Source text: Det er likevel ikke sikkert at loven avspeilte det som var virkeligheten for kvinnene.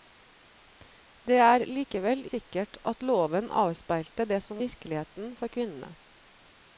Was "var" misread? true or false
true